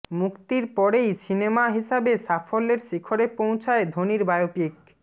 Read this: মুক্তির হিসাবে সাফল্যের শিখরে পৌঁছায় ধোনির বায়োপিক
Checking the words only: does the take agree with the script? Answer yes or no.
no